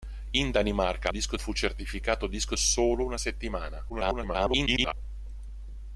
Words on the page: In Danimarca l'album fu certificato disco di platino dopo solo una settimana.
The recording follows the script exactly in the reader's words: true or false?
false